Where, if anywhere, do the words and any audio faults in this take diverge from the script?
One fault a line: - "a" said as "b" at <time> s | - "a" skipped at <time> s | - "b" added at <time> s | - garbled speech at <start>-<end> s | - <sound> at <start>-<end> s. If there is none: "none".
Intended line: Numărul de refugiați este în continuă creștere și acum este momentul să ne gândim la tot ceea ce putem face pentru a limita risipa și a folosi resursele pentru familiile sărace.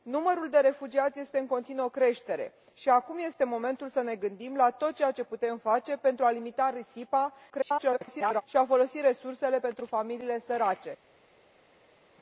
- garbled speech at 7.5-8.4 s